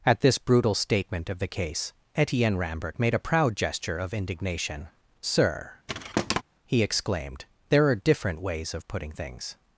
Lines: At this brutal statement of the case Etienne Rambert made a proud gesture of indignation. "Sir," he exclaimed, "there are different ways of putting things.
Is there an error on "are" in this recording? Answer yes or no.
no